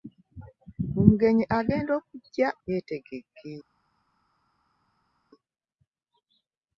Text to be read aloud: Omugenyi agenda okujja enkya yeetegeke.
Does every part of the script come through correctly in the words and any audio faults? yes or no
no